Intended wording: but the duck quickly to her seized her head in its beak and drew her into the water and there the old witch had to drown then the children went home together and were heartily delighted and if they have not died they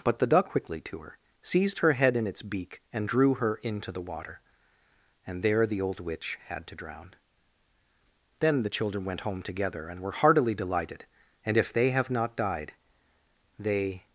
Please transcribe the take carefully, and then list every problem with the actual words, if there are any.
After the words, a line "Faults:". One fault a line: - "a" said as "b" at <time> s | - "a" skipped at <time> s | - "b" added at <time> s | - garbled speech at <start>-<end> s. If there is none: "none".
but the duck quickly to her seized her head in its beak and drew her into the water and there the old witch had to drown then the children went home together and were heartily delighted and if they have not died they
Faults:
none